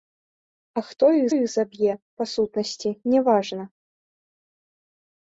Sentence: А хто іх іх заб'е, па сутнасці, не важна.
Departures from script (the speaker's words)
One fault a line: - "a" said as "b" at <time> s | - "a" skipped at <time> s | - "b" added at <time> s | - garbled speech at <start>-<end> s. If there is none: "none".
none